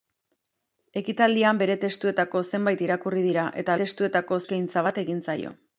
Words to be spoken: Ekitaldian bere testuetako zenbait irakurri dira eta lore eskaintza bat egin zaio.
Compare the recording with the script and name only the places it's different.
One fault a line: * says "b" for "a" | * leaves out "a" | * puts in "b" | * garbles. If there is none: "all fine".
* says "testuetako" for "lore"